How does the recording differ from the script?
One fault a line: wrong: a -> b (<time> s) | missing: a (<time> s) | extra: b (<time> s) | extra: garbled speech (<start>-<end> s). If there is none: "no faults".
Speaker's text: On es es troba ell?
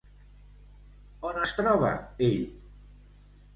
missing: es (1.6 s)